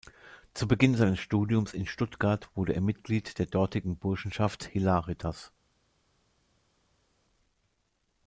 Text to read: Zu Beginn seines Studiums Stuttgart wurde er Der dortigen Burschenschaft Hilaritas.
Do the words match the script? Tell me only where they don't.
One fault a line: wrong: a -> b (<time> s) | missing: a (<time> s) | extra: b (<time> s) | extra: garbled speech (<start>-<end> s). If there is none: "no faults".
extra: in (1.8 s)
extra: Mitglied (2.8 s)